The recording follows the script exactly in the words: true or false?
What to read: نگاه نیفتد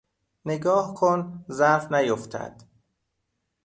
false